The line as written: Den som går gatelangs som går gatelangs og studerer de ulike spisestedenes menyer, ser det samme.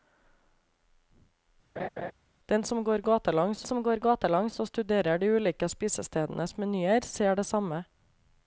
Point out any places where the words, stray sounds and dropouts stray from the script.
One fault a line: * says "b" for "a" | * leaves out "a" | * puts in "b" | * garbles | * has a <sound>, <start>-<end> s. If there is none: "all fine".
* has a laugh, 1.8-2.1 s